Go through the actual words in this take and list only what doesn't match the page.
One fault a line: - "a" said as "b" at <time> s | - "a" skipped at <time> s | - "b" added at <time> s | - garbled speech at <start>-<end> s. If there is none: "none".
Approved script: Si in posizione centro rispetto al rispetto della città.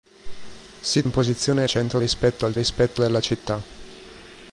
none